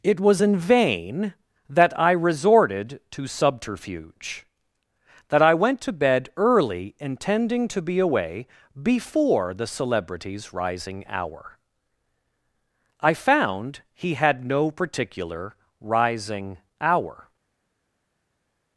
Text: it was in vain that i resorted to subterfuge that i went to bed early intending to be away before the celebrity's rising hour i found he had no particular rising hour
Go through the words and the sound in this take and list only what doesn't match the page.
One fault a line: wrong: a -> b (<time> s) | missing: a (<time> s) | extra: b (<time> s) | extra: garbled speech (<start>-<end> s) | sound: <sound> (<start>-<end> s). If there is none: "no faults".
no faults